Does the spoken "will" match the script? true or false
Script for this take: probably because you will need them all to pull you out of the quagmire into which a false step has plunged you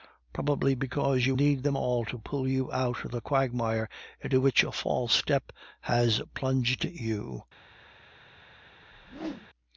false